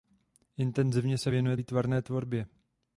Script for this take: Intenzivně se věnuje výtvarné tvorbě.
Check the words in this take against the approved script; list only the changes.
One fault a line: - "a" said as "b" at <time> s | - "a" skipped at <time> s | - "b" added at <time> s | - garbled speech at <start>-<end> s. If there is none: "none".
none